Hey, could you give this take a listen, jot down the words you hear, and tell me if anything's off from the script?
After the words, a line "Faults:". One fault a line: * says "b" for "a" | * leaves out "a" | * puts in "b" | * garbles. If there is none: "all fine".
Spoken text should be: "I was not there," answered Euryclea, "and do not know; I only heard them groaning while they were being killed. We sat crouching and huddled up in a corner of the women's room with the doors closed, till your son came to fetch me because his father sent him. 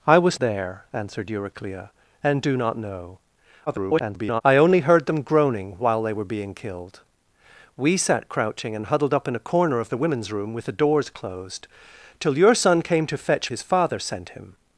"I was there," answered Euryclea, "and do not know; [garbled] I only heard them groaning while they were being killed. We sat crouching and huddled up in a corner of the women's room with the doors closed, till your son came to fetch his father sent him.
Faults:
* leaves out "not"
* garbles
* leaves out "me because"